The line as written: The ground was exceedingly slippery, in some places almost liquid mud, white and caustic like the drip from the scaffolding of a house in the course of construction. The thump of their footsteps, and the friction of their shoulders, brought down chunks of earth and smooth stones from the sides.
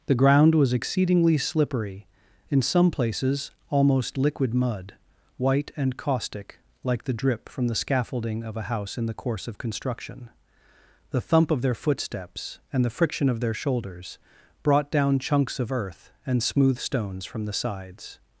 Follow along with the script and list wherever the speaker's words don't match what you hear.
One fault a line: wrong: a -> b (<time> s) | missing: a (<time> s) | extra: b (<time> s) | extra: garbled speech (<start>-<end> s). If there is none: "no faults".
no faults